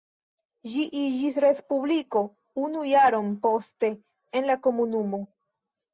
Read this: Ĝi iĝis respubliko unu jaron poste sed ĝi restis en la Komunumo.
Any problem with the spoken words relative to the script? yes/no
yes